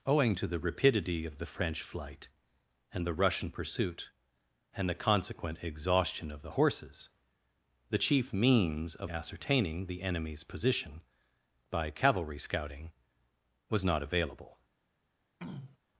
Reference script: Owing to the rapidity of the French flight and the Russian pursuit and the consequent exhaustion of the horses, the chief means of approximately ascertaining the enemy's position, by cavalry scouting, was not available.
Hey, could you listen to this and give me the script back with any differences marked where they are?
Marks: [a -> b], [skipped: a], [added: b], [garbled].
Owing to the rapidity of the French flight and the Russian pursuit and the consequent exhaustion of the horses, the chief means of [skipped: approximately] ascertaining the enemy's position, by cavalry scouting, was not available.